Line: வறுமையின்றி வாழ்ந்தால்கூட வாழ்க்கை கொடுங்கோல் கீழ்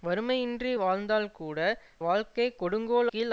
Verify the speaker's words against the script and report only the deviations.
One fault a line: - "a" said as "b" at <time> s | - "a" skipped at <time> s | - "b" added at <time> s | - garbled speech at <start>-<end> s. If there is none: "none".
none